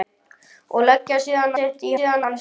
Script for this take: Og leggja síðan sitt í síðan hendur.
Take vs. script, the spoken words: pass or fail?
pass